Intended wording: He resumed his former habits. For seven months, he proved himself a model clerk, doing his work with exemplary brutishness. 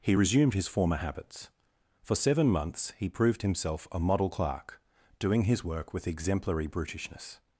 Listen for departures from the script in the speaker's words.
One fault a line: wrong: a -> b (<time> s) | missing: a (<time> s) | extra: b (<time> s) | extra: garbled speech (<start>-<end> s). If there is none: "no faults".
no faults